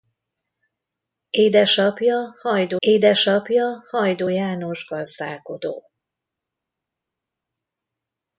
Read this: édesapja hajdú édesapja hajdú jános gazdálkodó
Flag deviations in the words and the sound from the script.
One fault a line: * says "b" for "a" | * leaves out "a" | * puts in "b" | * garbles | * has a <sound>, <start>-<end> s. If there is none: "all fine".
all fine